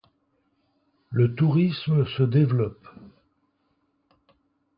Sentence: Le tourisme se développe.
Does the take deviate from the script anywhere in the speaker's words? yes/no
no